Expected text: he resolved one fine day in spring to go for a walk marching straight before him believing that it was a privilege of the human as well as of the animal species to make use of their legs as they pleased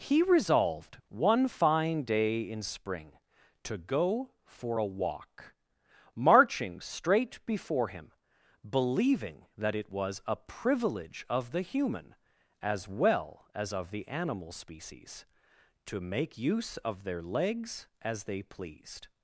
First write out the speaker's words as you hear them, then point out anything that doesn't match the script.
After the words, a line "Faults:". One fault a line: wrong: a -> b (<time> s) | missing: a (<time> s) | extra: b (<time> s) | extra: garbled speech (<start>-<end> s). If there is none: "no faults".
he resolved one fine day in spring to go for a walk marching straight before him believing that it was a privilege of the human as well as of the animal species to make use of their legs as they pleased
Faults:
no faults